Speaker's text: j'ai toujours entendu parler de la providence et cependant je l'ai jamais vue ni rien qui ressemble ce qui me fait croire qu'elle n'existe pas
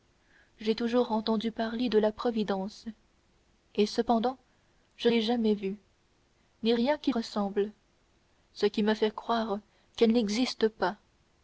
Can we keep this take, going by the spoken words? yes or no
yes